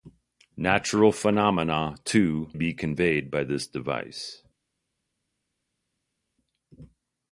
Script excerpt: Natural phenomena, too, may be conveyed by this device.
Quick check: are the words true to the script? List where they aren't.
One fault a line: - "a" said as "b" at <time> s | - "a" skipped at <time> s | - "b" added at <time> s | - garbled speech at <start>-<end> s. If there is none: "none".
- "may" skipped at 2.5 s